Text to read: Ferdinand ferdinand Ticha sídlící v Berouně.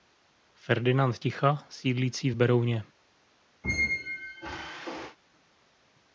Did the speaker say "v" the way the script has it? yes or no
yes